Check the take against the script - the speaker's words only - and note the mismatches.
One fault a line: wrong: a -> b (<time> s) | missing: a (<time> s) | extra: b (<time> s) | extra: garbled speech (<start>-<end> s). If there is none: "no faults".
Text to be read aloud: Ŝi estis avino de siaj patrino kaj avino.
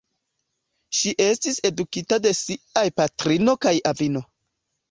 wrong: avino -> edukita (1.7 s)